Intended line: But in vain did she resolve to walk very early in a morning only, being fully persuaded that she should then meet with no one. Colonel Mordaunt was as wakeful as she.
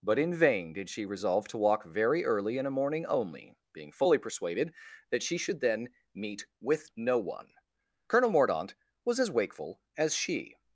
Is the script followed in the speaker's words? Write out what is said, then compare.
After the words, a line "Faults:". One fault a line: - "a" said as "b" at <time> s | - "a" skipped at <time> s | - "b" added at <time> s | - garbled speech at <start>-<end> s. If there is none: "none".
But in vain did she resolve to walk very early in a morning only, being fully persuaded that she should then meet with no one. Colonel Mordaunt was as wakeful as she.
Faults:
none